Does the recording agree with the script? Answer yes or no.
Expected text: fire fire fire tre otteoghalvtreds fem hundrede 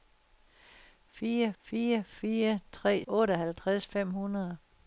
yes